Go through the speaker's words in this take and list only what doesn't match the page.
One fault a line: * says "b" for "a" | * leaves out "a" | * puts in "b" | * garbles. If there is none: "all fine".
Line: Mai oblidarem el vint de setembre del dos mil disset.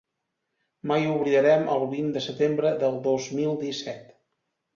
all fine